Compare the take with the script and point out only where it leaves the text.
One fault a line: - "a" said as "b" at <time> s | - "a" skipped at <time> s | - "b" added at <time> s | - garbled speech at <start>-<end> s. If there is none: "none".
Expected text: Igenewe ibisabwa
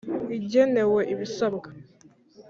none